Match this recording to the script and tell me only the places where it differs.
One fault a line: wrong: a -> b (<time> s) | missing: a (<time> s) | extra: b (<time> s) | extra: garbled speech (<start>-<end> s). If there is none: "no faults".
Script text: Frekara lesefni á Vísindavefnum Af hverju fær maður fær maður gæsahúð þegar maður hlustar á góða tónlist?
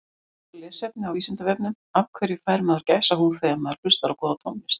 missing: fær maður (2.9 s)